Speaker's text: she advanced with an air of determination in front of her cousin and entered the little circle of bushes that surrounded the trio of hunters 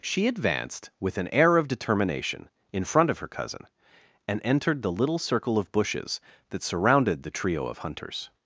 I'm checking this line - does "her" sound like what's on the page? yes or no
yes